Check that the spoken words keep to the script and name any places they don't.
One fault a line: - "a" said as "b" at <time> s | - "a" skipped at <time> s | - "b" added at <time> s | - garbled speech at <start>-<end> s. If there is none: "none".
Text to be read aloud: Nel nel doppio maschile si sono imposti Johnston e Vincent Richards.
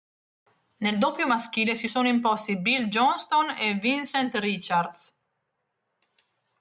- "nel" skipped at 1.0 s
- "Bill" added at 2.6 s